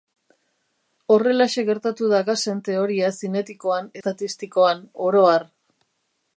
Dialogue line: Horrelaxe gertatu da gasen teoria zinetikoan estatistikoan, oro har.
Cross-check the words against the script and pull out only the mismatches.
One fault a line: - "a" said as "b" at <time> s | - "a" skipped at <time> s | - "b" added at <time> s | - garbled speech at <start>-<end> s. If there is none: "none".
none